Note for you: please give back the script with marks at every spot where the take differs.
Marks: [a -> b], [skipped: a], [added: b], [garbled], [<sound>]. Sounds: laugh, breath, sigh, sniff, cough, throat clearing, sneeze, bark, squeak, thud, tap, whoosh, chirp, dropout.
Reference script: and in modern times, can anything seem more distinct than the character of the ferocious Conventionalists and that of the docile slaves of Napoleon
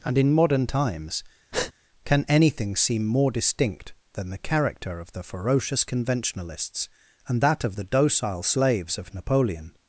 and in modern times, [breath] can anything seem more distinct than the character of the ferocious Conventionalists and that of the docile slaves of Napoleon